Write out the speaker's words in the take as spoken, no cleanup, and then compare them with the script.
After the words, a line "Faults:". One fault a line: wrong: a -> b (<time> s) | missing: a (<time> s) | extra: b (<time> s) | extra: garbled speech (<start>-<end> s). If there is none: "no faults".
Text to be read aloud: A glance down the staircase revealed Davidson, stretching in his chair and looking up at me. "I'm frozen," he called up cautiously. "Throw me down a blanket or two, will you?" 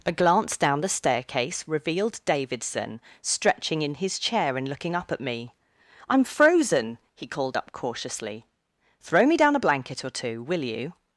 A glance down the staircase revealed Davidson, stretching in his chair and looking up at me. "I'm frozen," he called up cautiously. "Throw me down a blanket or two, will you?"
Faults:
no faults